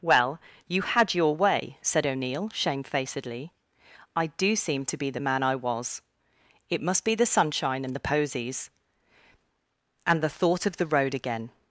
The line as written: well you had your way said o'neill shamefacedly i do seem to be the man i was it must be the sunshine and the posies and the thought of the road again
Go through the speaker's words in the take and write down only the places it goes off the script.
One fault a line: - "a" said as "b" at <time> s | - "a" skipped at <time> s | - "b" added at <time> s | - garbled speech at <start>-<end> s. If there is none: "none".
none